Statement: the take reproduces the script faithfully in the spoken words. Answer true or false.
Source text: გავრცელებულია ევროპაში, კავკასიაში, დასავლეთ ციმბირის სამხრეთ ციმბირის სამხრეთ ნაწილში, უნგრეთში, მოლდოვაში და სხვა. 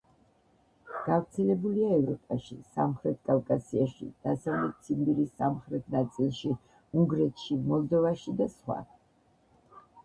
false